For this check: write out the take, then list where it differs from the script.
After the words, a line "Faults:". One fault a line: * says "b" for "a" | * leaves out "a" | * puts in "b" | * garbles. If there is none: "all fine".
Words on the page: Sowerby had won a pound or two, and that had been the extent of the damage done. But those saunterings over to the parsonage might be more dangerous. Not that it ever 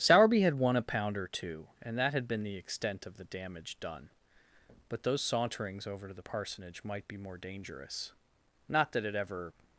Sowerby had won a pound or two, and that had been the extent of the damage done. But those saunterings over to the parsonage might be more dangerous. Not that it ever
Faults:
all fine